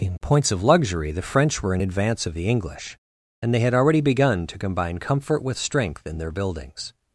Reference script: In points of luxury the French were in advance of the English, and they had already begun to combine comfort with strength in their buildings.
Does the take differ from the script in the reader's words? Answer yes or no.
no